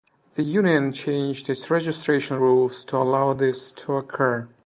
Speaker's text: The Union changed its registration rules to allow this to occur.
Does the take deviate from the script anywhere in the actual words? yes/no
no